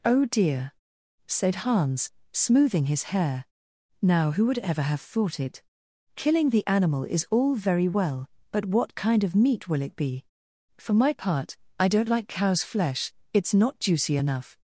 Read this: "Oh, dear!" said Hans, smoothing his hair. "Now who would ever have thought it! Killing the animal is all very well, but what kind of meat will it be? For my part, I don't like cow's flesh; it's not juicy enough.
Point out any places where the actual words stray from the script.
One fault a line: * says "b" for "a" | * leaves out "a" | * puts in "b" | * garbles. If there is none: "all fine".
all fine